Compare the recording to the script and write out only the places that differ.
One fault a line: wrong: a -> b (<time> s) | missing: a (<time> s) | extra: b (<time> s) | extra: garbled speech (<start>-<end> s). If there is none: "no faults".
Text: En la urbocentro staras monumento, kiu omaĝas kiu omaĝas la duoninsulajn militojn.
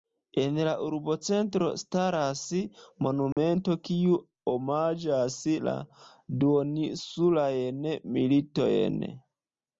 missing: kiu omaĝas (5.4 s)